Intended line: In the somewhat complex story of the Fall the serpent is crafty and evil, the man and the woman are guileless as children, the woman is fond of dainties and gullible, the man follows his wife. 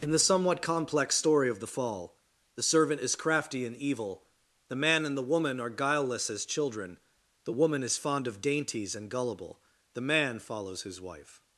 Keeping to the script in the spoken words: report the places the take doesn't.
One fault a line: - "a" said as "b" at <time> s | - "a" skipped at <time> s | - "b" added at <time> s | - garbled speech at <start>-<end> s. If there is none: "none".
- "serpent" said as "servant" at 2.6 s